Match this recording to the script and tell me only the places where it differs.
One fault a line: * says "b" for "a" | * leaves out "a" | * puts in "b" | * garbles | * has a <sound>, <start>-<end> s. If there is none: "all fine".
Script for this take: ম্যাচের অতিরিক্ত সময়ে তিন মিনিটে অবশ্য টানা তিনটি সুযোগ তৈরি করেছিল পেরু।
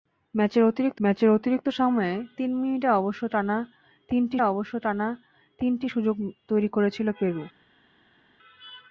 * puts in "ম্যাচের অতিরিক্ত"
* puts in "অবশ্য টানা তিনটি"